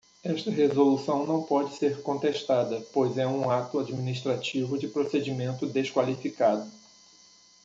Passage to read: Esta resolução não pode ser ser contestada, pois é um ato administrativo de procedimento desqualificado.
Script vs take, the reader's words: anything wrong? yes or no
yes